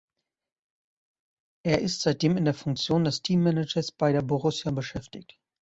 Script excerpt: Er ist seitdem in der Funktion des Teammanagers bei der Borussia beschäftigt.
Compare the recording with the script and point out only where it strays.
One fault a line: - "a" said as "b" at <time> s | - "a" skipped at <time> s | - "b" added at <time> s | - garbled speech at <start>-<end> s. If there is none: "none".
none